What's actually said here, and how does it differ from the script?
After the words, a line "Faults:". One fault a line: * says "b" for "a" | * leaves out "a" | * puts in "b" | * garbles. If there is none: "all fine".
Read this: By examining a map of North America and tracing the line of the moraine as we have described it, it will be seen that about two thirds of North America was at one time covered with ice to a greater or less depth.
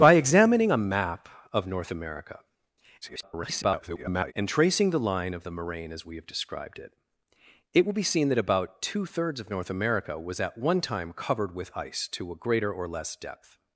By examining a map of North America [garbled] and tracing the line of the moraine as we have described it, it will be seen that about two thirds of North America was at one time covered with ice to a greater or less depth.
Faults:
* garbles